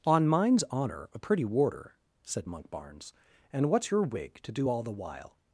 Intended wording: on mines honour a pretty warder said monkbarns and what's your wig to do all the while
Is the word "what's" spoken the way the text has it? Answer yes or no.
yes